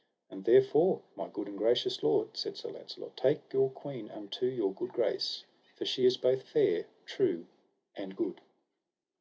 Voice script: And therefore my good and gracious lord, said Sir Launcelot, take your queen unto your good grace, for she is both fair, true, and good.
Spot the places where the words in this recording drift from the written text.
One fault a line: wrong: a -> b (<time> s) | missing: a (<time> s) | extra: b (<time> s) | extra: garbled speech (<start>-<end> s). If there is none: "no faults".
no faults